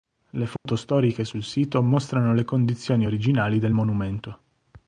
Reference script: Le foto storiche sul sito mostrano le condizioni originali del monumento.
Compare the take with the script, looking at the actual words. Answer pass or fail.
pass